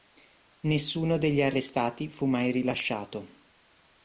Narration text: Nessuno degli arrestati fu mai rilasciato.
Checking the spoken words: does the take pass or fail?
pass